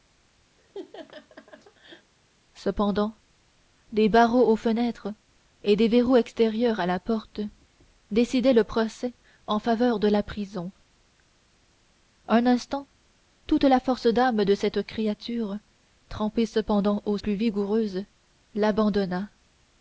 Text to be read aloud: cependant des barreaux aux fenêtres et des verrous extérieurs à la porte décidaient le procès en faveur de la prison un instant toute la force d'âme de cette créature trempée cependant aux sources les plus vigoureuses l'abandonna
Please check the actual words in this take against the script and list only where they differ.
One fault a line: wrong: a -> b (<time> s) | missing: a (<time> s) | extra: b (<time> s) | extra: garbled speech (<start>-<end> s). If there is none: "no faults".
missing: sources les (17.2 s)